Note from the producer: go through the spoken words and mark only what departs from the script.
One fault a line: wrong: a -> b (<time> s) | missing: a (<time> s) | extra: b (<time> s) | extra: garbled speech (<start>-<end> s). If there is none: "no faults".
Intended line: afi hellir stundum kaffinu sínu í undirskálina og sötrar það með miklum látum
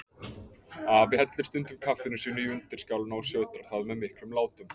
no faults